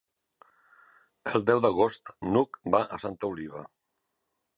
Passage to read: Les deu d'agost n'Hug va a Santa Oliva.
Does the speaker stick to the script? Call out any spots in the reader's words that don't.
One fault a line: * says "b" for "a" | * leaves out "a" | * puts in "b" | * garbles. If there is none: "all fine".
* says "El" for "Les"